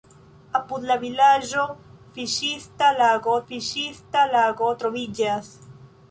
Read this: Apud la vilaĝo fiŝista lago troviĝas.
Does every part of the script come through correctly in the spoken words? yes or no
no